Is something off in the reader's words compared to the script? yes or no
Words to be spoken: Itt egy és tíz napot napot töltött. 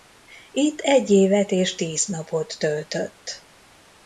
yes